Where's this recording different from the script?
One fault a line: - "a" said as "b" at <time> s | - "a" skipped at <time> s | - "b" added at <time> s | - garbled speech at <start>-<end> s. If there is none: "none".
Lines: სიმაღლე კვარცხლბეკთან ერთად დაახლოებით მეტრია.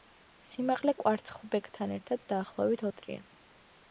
none